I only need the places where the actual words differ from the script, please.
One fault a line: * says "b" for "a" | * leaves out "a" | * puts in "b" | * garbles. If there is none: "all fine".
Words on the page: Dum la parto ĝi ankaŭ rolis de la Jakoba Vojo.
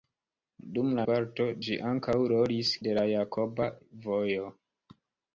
all fine